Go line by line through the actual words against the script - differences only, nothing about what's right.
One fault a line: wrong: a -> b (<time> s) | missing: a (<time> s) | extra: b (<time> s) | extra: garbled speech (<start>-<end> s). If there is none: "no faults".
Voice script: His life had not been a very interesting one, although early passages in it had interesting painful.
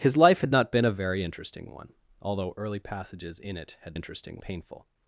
no faults